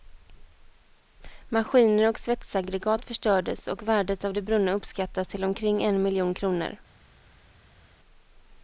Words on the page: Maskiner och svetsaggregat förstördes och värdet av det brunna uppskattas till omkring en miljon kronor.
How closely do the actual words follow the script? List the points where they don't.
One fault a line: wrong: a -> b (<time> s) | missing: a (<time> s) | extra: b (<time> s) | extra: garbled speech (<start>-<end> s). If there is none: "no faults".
no faults